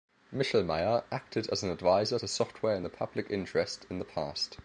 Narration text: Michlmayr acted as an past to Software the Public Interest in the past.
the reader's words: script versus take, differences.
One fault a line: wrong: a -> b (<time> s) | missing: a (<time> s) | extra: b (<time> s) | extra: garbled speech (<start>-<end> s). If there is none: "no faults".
wrong: past -> advisor (1.7 s)
extra: in (2.8 s)